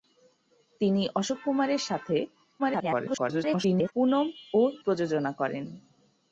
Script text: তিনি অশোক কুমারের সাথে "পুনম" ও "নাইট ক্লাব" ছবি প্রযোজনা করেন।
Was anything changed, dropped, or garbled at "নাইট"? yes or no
yes